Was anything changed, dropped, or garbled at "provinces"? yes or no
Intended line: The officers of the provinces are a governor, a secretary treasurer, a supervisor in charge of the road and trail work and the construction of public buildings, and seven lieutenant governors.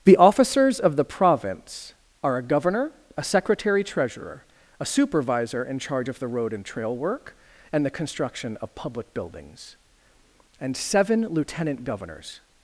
yes